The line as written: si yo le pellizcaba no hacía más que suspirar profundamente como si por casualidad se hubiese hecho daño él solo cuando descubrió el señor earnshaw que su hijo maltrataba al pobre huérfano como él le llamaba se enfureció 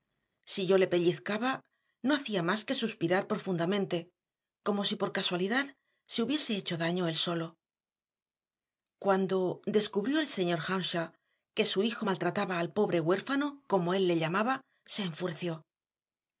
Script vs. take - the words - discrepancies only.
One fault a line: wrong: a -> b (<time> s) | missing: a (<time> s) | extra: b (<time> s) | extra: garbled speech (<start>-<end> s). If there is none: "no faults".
no faults